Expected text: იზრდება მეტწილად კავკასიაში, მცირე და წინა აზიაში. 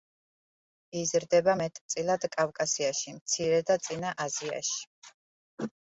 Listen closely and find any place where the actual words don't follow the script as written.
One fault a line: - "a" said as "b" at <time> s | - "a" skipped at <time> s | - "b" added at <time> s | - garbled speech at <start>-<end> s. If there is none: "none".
none